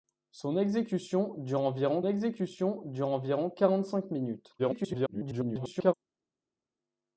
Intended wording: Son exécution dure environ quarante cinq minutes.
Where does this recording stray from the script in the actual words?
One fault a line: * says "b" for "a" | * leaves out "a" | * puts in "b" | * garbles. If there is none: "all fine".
* puts in "exécution dure environ"
* garbles